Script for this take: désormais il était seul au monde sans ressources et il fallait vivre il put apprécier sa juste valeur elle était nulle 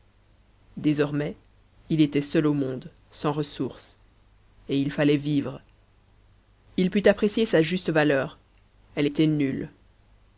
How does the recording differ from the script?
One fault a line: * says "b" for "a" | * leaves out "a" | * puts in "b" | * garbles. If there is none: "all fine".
all fine